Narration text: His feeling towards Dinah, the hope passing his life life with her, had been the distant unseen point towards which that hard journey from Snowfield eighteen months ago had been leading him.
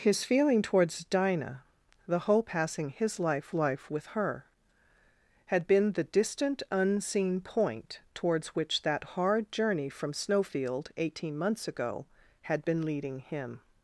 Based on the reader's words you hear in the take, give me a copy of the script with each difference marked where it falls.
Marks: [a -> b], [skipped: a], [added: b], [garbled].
His feeling towards Dinah, the hope passing his life life with her, had been the distant unseen point towards which that hard journey from Snowfield eighteen months ago had been leading him.